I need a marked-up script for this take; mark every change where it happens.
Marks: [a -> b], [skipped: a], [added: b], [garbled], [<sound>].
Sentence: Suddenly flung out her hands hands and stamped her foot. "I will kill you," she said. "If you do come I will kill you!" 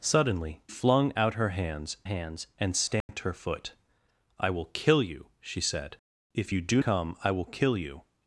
Suddenly flung out her hands hands and stamped [dropout] her foot. "I will kill you," she said. "If you do come I will kill you!"